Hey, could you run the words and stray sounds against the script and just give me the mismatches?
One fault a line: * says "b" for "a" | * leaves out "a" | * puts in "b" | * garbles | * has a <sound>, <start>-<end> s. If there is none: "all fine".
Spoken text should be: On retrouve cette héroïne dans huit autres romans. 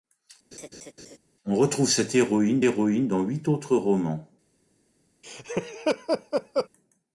* has a laugh, 0.5-1.2 s
* puts in "héroïne"
* has a laugh, 5.2-6.7 s